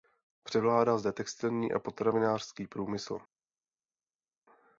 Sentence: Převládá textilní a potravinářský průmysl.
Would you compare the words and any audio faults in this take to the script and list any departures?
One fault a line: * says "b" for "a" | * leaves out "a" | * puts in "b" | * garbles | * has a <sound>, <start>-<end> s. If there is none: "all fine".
* puts in "zde"